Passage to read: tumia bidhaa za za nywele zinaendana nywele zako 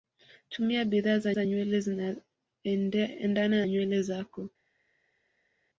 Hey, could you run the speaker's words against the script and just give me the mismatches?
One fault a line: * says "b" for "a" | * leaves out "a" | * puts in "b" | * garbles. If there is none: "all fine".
all fine